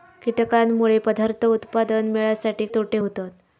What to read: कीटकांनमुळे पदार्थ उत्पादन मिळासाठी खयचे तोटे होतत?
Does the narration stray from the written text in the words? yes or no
yes